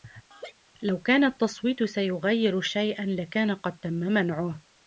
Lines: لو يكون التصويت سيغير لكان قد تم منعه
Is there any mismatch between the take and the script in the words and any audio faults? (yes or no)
yes